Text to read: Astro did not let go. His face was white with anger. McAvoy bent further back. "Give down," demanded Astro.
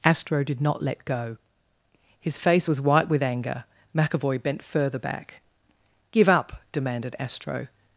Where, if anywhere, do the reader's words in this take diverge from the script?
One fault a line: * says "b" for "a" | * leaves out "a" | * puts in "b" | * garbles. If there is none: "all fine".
* says "up" for "down"